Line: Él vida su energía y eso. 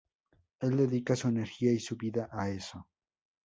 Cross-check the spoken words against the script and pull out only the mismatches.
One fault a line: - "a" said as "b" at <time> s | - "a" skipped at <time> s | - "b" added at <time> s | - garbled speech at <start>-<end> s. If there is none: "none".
- "vida" said as "dedica" at 0.8 s
- "su vida a" added at 1.8 s